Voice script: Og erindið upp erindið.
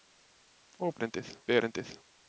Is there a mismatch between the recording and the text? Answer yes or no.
no